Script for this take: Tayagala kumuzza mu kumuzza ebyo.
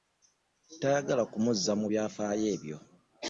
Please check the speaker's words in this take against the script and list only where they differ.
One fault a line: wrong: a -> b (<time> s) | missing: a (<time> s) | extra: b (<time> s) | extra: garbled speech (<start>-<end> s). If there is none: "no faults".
wrong: kumuzza -> byafaayo (1.9 s)